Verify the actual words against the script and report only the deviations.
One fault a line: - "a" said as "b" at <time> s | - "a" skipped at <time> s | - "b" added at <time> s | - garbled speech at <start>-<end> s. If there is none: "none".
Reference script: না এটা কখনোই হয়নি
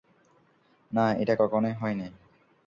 none